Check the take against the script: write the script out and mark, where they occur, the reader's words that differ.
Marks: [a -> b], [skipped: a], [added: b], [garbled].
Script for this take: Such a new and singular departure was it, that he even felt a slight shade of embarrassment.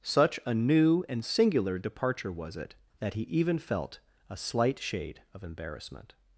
Such a new and singular departure was it, that he even felt a slight shade of embarrassment.